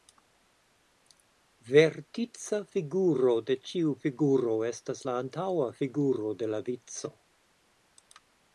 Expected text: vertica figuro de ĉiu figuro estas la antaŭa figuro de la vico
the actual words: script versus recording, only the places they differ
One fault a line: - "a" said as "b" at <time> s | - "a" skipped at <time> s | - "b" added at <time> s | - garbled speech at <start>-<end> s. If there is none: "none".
none